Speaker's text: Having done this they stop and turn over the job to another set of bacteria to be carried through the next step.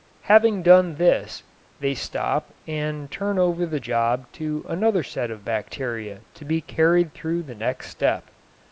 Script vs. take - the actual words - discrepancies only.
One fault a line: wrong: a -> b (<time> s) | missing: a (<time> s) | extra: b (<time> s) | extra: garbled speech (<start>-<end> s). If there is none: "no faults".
no faults